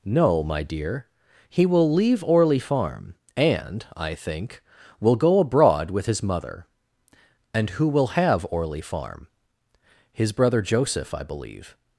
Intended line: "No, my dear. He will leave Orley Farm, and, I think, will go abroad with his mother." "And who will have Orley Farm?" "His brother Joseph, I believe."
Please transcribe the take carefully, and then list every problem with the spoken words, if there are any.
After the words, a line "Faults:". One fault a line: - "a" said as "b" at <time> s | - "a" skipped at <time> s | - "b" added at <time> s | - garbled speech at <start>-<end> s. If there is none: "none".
"No, my dear. He will leave Orley Farm, and, I think, will go abroad with his mother." "And who will have Orley Farm?" "His brother Joseph, I believe."
Faults:
none